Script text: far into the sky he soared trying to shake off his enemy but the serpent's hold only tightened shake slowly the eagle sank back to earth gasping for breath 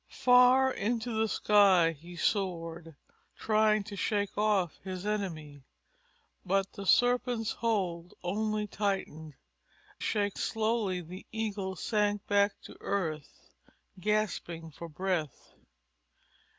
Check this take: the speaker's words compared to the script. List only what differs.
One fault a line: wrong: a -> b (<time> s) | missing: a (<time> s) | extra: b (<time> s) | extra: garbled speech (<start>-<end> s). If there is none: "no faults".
no faults